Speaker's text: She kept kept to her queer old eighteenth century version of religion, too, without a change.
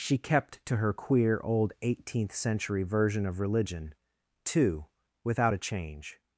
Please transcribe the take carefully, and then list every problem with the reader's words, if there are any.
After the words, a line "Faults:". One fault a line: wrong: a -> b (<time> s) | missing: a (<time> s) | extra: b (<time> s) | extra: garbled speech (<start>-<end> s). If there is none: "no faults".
She kept to her queer old eighteenth century version of religion, too, without a change.
Faults:
missing: kept (0.7 s)